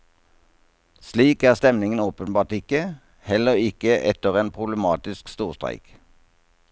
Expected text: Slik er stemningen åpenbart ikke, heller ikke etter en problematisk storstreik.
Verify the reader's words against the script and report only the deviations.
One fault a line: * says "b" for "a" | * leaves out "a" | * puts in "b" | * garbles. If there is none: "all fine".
all fine